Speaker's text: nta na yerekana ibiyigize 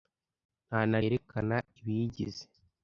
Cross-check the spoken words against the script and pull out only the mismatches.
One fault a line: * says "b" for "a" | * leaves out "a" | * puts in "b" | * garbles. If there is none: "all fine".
all fine